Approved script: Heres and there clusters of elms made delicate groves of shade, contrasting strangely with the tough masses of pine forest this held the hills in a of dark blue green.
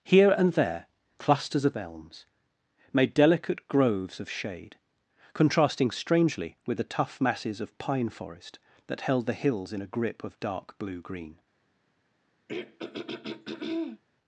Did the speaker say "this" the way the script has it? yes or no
no